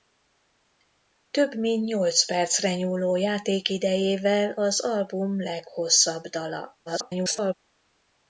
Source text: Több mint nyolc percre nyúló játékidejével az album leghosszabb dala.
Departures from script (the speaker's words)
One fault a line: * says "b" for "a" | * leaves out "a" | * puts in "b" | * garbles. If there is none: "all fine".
* garbles